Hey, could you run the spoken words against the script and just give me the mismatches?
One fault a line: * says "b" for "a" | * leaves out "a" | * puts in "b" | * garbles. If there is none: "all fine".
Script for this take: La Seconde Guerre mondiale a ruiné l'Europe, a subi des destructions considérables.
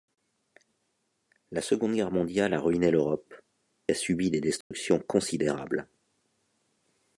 all fine